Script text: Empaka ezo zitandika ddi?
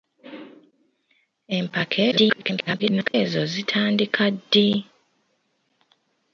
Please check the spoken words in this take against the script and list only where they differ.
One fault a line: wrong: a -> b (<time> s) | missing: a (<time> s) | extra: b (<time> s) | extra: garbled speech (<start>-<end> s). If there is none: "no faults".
extra: garbled speech (2.1-3.1 s)